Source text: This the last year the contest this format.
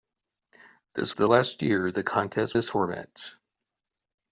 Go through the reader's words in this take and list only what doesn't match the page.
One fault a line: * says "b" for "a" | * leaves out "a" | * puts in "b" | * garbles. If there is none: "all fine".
all fine